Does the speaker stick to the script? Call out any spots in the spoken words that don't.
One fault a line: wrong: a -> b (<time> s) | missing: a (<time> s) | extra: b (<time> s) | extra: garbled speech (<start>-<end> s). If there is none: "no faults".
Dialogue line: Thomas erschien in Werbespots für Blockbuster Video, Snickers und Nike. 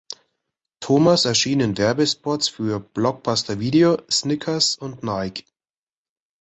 no faults